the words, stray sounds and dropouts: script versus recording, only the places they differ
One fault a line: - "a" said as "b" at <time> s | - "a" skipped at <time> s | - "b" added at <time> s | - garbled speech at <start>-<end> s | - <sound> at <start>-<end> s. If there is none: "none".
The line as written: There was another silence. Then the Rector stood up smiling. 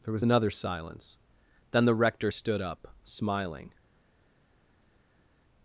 none